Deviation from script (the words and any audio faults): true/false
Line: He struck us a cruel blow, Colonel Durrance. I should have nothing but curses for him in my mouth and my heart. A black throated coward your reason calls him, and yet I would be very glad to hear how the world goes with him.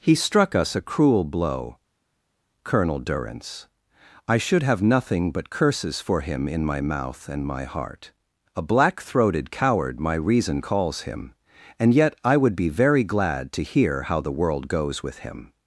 true